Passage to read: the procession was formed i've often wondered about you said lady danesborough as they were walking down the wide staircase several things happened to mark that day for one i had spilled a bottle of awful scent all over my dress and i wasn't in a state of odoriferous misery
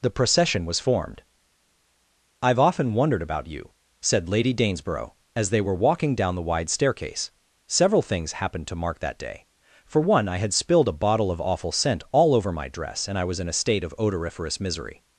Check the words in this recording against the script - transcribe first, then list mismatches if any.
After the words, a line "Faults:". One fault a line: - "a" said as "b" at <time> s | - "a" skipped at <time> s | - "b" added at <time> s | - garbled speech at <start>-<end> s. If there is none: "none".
the procession was formed i've often wondered about you said lady danesborough as they were walking down the wide staircase several things happened to mark that day for one i had spilled a bottle of awful scent all over my dress and i was in a state of odoriferous misery
Faults:
- "wasn't" said as "was" at 13.3 s